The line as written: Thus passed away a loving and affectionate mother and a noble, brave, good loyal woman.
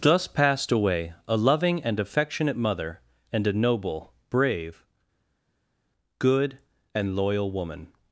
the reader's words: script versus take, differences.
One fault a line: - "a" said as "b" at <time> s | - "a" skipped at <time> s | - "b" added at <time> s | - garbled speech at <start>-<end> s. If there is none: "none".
- "and" added at 6.9 s